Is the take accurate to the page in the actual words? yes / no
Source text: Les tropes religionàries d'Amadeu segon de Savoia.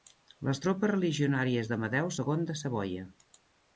yes